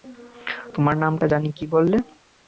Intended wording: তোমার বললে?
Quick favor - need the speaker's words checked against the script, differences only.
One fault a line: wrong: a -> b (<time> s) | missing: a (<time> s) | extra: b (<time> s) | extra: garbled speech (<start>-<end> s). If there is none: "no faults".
extra: নামটা জানি কী (1.0 s)